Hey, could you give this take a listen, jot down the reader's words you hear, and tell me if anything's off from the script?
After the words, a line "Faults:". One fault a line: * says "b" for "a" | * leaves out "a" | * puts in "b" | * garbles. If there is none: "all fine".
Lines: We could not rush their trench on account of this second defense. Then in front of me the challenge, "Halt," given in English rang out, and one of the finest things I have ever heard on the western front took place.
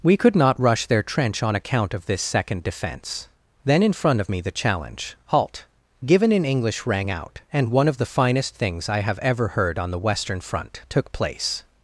We could not rush their trench on account of this second defense. Then in front of me the challenge, "Halt," given in English rang out, and one of the finest things I have ever heard on the western front took place.
Faults:
all fine